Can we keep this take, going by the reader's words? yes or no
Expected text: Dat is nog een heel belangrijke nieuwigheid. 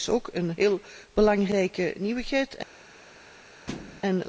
no